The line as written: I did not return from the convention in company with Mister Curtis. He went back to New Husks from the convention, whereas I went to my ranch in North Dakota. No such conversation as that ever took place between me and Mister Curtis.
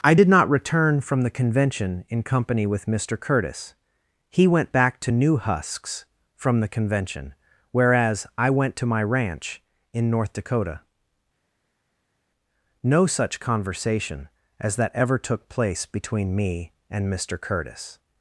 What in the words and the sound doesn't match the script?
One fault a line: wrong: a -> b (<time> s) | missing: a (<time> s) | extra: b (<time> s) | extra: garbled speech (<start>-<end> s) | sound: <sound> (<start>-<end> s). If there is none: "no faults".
no faults